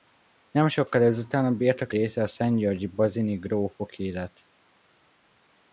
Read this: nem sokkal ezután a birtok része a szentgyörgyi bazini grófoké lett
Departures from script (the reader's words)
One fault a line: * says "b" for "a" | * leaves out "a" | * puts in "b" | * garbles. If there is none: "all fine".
all fine